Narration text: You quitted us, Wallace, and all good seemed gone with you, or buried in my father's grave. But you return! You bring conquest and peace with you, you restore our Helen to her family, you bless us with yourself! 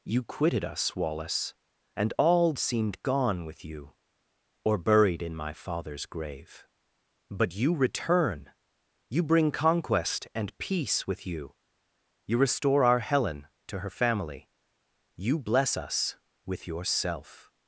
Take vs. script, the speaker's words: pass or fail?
fail